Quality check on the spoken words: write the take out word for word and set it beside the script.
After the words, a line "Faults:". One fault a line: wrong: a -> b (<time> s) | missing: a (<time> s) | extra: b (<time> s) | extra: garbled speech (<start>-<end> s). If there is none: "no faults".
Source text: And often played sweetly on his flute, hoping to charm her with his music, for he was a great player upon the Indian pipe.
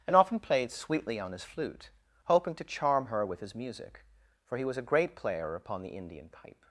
And often played sweetly on his flute, hoping to charm her with his music, for he was a great player upon the Indian pipe.
Faults:
no faults